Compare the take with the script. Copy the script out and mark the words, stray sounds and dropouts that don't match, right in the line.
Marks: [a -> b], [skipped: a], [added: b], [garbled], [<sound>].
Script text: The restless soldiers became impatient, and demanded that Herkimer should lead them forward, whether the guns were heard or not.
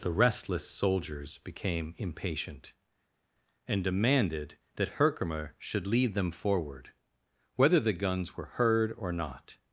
The restless soldiers became impatient, and demanded that Herkimer should lead them forward, whether the guns were heard or not.